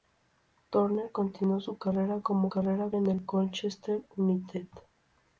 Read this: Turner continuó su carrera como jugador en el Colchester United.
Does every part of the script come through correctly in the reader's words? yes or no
no